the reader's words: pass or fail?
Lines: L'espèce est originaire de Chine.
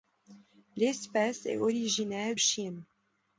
fail